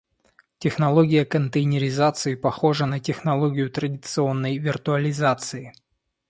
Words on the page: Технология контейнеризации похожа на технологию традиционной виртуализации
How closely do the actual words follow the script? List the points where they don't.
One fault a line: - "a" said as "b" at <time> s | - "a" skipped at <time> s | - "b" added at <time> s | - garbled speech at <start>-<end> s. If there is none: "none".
none